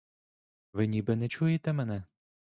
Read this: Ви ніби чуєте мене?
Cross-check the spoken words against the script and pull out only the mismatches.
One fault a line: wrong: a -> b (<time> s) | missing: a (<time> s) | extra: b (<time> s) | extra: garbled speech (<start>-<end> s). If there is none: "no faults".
extra: не (1.1 s)